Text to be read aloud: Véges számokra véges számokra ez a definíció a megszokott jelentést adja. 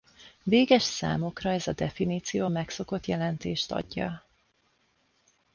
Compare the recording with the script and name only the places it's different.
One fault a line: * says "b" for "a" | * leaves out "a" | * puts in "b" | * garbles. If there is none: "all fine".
* leaves out "véges számokra"